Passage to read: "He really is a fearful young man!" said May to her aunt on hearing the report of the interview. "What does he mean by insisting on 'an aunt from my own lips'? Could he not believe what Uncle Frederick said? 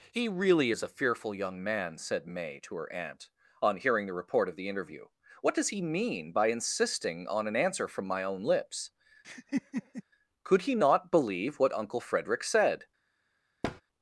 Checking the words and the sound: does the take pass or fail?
fail